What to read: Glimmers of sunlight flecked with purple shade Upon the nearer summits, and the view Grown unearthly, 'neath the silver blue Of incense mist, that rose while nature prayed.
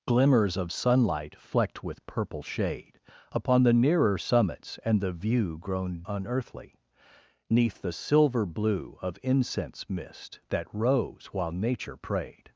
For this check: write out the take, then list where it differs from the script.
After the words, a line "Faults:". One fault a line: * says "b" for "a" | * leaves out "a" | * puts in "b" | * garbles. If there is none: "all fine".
Glimmers of sunlight flecked with purple shade Upon the nearer summits, and the view Grown unearthly, 'neath the silver blue Of incense mist, that rose while nature prayed.
Faults:
all fine